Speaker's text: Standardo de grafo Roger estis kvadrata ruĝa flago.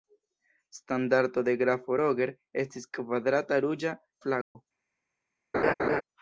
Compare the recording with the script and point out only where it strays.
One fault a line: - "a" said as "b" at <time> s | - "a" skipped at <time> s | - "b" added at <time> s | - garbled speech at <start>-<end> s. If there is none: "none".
none